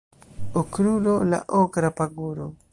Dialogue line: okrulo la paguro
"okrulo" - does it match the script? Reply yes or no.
yes